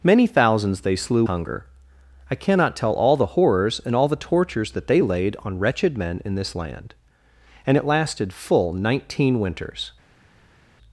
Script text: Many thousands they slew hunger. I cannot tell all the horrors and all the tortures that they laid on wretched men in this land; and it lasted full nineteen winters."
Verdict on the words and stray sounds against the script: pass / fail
pass